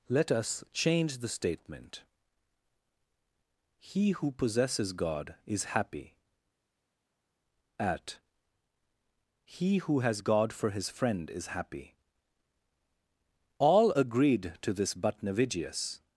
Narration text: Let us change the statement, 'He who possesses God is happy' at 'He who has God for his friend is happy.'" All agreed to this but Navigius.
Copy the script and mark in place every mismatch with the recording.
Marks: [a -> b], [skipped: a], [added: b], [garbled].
Let us change the statement, 'He who possesses God is happy' at 'He who has God for his friend is happy.'" All agreed to this but Navigius.